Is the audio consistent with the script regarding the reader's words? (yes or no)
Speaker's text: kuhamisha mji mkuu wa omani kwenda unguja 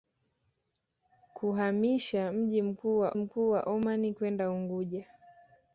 no